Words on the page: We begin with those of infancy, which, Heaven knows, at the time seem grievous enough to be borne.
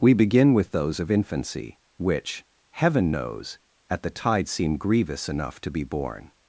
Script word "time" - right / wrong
wrong